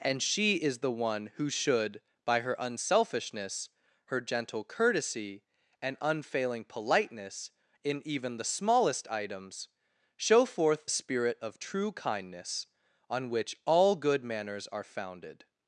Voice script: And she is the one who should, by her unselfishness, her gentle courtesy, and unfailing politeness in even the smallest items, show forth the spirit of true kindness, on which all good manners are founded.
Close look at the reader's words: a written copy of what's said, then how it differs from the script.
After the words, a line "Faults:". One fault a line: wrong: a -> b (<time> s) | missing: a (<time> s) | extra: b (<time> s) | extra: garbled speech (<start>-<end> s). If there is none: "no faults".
And she is the one who should, by her unselfishness, her gentle courtesy, and unfailing politeness in even the smallest items, show forth spirit of true kindness, on which all good manners are founded.
Faults:
missing: the (10.9 s)